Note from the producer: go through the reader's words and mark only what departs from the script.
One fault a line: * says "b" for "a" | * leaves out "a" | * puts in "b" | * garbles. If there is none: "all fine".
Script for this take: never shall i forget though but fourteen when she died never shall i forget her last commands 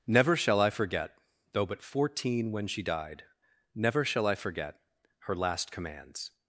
all fine